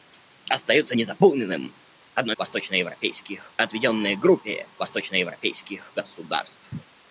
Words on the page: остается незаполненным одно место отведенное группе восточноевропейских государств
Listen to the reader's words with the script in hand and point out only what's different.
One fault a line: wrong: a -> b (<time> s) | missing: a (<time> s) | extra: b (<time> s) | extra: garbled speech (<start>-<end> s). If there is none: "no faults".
wrong: место -> восточноевропейских (2.4 s)